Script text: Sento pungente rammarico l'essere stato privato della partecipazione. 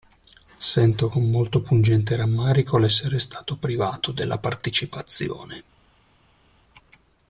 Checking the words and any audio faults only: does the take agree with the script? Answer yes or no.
no